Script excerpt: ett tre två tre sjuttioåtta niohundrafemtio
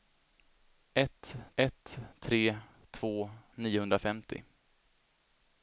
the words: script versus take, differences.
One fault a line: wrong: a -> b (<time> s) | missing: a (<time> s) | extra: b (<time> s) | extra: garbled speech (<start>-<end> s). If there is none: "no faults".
extra: ett (1.5 s)
missing: tre sjuttioåtta (3.3 s)